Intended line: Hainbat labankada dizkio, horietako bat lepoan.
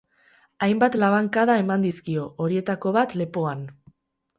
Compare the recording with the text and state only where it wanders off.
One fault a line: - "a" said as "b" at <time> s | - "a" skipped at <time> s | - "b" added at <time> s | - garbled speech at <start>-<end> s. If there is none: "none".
- "eman" added at 1.7 s